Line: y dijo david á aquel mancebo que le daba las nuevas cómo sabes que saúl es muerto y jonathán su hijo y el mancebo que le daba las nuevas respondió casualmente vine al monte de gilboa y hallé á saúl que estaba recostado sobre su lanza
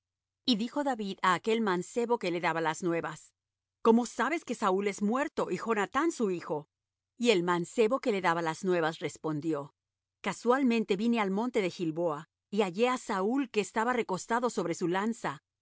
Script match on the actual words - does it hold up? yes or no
yes